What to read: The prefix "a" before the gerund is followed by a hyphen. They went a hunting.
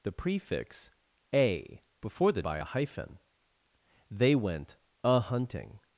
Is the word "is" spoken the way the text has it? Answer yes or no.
no